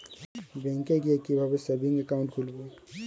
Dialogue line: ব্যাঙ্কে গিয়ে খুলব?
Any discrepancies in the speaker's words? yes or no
yes